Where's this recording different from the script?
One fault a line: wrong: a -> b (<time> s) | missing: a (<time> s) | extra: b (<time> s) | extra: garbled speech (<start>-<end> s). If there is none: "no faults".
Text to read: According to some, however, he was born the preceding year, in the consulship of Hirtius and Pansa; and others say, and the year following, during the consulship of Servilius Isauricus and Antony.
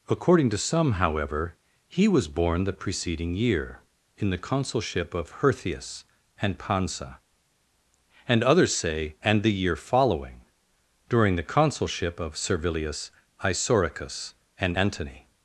no faults